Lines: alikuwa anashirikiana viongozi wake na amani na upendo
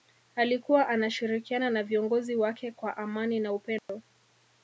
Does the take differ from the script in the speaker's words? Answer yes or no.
yes